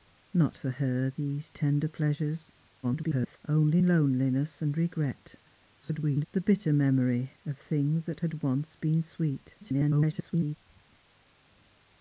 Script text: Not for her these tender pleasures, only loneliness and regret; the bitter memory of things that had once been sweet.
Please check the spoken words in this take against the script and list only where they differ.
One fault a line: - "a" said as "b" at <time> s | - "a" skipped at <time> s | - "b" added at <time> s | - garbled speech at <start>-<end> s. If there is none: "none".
- garbled speech at 2.8-3.4 s
- garbled speech at 5.8-6.3 s
- garbled speech at 9.6-10.6 s